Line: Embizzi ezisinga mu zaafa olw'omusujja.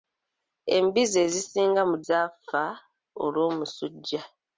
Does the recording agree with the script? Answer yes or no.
yes